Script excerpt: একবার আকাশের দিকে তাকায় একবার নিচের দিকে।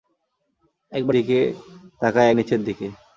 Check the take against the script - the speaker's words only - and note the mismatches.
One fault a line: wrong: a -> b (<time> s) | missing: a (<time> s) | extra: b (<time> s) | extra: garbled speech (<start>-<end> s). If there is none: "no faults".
missing: আকাশের (1.1 s)
missing: একবার (2.3 s)